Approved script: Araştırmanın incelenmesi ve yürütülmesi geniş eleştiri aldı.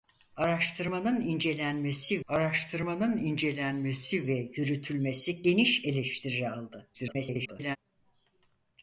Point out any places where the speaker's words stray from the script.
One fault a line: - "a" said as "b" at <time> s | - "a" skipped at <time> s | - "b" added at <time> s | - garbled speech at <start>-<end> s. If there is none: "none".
- "araştırmanın incelenmesi" added at 2.3 s
- garbled speech at 6.9-7.8 s